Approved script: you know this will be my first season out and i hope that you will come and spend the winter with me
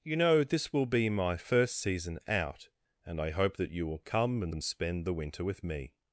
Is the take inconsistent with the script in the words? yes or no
yes